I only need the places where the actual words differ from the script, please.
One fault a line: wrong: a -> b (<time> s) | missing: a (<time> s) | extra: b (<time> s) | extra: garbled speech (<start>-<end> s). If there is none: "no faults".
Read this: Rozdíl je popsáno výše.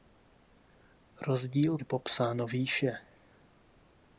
no faults